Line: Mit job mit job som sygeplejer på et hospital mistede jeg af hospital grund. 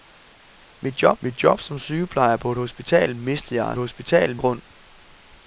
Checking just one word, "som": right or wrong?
right